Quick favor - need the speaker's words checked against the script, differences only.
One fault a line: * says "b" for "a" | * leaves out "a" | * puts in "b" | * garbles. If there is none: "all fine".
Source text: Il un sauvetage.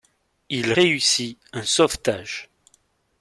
* puts in "réussit"